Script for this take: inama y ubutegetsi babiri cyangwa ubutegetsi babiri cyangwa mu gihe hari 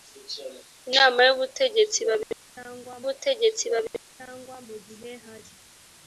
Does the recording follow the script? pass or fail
pass